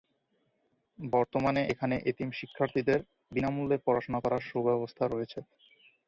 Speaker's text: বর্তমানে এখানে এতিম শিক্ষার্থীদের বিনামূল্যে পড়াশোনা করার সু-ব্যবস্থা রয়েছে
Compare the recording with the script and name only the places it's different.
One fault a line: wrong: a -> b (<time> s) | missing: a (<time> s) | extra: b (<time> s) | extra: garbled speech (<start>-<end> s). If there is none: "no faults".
no faults